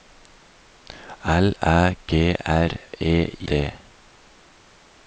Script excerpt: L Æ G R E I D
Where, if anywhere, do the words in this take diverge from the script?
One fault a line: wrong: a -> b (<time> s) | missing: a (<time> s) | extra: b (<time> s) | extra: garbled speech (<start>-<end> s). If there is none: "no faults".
missing: I (3.1 s)